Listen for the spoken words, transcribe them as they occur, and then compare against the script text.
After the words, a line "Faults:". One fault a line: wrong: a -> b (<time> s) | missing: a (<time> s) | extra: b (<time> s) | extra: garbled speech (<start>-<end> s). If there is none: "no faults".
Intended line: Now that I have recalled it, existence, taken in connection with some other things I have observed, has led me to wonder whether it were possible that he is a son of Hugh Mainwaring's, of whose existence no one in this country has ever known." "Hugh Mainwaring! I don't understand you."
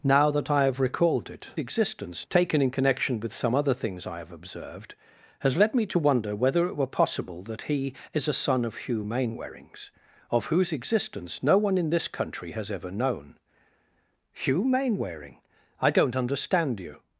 Now that I have recalled it, existence, taken in connection with some other things I have observed, has led me to wonder whether it were possible that he is a son of Hugh Mainwaring's, of whose existence no one in this country has ever known." "Hugh Mainwaring! I don't understand you."
Faults:
no faults